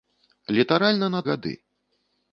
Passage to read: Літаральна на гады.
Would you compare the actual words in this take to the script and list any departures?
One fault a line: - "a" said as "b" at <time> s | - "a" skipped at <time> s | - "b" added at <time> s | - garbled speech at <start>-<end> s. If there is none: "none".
none